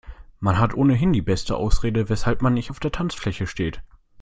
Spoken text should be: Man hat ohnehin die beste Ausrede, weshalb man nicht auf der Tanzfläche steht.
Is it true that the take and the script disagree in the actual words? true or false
false